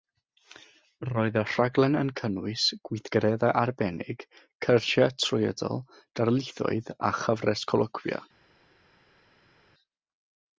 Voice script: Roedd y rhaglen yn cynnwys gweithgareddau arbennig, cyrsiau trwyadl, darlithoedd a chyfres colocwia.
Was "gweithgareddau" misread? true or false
false